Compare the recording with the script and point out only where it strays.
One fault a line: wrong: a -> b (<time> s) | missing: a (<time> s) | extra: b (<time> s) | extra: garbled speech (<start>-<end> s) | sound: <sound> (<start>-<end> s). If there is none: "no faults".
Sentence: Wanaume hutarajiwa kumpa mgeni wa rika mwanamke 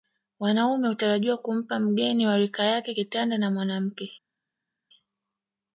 extra: yake kitanda na (2.6 s)